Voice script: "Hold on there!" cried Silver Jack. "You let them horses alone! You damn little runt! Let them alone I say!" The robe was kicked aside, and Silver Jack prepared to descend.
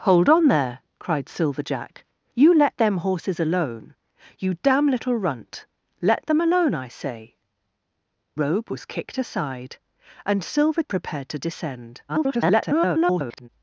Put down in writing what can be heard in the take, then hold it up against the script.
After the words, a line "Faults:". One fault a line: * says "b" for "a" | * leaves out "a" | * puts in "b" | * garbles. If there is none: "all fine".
"Hold on there!" cried Silver Jack. "You let them horses alone! You damn little runt! Let them alone I say!" Robe was kicked aside, and Silver Prepared to descend. [garbled]
Faults:
* leaves out "The"
* leaves out "Jack"
* garbles